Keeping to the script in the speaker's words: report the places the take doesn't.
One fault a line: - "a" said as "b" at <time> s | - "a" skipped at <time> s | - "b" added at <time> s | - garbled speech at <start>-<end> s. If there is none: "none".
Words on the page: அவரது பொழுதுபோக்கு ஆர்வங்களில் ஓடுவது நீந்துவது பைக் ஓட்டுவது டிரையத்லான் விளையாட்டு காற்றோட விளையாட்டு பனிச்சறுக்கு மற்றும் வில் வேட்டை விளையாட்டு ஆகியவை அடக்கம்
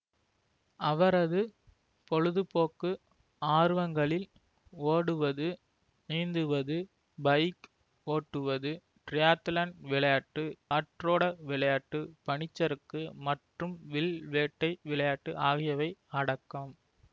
none